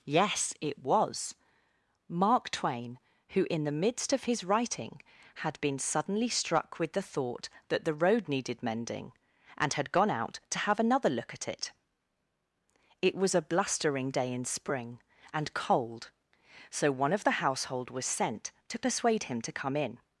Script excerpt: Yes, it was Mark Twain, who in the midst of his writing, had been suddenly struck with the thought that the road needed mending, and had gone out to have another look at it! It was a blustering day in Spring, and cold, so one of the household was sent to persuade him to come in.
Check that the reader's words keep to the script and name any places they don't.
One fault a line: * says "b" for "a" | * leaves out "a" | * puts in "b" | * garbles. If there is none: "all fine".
all fine